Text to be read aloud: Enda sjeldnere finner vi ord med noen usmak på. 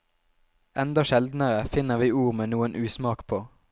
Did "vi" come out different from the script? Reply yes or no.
no